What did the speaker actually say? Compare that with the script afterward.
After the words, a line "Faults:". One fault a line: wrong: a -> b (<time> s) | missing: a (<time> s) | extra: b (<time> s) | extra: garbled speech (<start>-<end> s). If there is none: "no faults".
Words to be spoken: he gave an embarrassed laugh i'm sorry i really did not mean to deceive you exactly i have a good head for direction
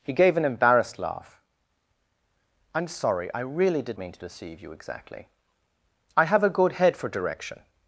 he gave an embarrassed laugh i'm sorry i really did mean to deceive you exactly i have a good head for direction
Faults:
missing: not (4.0 s)